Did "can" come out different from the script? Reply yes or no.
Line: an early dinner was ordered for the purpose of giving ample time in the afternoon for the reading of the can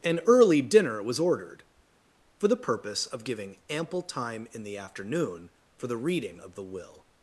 yes